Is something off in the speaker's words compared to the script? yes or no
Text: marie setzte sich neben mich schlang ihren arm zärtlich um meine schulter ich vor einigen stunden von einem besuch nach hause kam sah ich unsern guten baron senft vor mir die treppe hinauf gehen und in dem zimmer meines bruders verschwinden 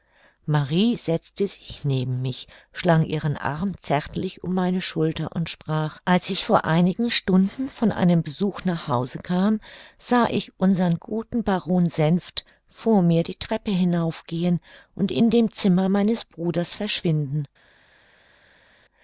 yes